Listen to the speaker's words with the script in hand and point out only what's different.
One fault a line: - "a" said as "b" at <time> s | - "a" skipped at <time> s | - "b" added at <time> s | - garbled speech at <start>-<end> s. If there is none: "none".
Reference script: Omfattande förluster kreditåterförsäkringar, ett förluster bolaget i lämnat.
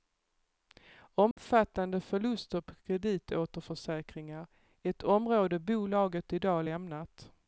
- "på" added at 2.6 s
- "förluster" said as "område" at 5.0 s
- "dag" added at 6.4 s